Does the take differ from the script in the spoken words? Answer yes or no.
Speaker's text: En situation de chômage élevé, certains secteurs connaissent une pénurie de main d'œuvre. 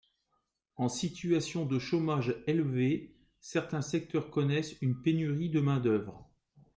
no